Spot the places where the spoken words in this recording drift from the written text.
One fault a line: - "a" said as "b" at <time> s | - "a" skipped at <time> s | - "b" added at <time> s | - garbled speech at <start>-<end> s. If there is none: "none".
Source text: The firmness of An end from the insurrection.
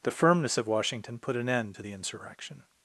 - "Washington put" added at 0.7 s
- "from" said as "to" at 1.7 s